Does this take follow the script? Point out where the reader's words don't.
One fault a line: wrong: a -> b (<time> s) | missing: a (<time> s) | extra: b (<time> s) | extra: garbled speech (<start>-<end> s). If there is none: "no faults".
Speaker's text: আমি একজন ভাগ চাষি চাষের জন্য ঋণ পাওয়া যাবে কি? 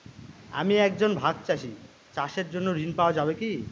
no faults